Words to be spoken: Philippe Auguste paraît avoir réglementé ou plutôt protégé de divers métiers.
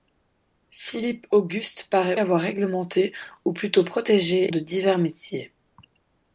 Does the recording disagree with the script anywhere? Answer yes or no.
no